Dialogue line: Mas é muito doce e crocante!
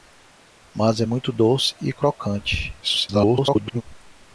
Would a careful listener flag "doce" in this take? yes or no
no